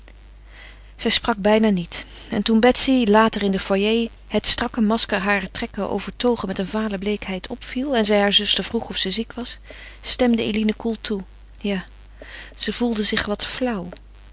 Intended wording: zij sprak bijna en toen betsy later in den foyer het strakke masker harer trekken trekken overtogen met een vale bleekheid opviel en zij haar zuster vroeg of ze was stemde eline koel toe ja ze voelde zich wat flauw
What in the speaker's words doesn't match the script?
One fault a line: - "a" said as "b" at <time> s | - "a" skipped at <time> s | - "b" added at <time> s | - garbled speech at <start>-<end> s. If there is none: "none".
- "niet" added at 1.7 s
- "trekken" skipped at 5.9 s
- "ziek" added at 9.1 s